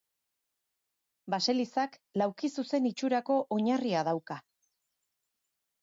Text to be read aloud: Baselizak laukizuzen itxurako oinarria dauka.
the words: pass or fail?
pass